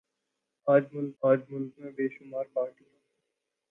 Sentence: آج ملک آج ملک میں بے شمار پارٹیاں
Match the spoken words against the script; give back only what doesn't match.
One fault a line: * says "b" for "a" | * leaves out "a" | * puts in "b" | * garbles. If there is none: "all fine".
all fine